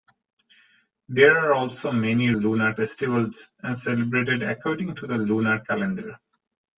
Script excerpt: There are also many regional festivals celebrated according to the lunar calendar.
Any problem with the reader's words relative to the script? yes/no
yes